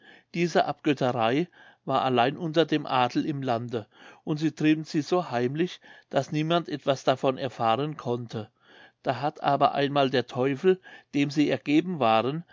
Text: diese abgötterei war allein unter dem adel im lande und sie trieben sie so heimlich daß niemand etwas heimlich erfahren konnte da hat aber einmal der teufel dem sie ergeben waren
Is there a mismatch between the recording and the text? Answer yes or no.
yes